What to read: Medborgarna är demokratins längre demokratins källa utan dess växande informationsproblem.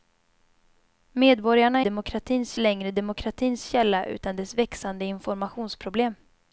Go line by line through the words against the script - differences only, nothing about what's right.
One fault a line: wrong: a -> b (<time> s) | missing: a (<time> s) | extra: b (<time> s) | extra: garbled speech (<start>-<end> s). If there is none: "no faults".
no faults